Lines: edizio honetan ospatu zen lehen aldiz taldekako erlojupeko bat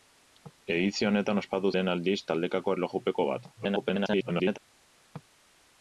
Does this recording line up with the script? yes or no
no